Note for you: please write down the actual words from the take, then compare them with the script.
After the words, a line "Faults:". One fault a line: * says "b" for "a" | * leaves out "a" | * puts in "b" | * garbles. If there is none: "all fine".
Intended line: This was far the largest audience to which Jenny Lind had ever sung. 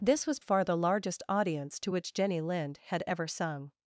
This was far the largest audience to which Jenny Lind had ever sung.
Faults:
all fine